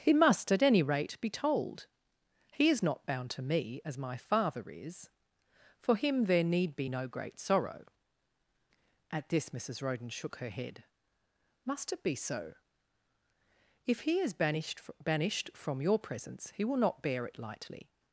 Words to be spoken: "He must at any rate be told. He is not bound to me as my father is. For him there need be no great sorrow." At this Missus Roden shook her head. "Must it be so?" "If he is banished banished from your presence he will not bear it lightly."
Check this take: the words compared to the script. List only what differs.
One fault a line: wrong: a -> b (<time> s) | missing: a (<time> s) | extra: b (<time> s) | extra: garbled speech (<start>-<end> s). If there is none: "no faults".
no faults